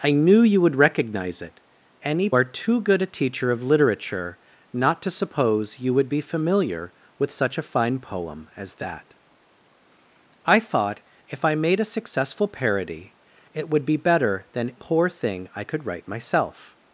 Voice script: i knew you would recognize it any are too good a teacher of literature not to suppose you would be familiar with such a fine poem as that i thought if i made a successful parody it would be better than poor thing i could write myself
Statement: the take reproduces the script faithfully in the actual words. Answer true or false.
true